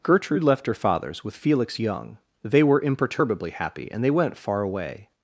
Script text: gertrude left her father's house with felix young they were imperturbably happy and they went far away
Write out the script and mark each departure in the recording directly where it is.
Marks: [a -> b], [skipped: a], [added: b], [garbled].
gertrude left her father's [skipped: house] with felix young they were imperturbably happy and they went far away